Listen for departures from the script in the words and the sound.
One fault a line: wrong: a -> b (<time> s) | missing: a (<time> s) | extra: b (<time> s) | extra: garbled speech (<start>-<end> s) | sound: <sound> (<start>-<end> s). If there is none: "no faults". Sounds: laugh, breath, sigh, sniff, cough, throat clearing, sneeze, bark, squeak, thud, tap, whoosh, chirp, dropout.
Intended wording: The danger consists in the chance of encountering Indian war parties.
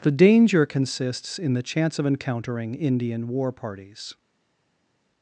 no faults